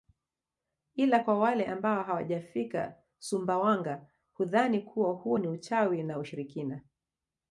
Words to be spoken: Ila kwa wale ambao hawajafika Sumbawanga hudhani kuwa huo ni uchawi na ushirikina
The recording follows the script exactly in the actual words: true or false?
true